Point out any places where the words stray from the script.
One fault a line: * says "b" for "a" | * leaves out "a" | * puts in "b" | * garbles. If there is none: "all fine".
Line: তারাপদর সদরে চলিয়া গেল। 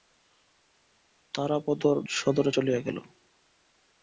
all fine